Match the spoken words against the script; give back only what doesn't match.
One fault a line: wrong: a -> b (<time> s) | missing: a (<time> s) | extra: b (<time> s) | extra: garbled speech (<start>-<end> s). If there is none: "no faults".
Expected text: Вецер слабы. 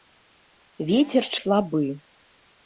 no faults